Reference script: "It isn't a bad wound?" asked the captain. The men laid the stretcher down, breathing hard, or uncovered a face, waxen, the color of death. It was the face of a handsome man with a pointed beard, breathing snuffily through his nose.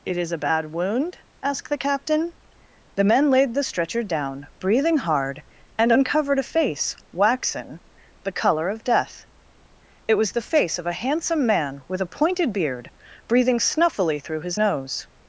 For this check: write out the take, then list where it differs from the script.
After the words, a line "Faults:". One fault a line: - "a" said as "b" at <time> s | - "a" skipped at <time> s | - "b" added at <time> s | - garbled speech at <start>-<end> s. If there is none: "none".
"It is a bad wound?" asked the captain. The men laid the stretcher down, breathing hard, and uncovered a face, waxen, the color of death. It was the face of a handsome man with a pointed beard, breathing snuffily through his nose.
Faults:
- "isn't" said as "is" at 0.2 s
- "or" said as "and" at 5.8 s